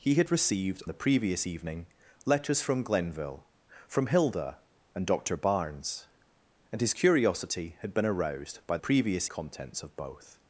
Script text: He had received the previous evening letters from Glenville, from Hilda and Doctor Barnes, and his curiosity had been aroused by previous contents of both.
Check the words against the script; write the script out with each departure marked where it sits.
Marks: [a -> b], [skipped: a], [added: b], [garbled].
He had received the previous evening letters from Glenville, from Hilda and Doctor Barnes, and his curiosity had been aroused by previous contents of both.